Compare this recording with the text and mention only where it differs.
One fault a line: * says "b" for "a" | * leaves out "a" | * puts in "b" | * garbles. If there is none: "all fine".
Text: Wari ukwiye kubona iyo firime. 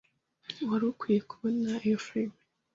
all fine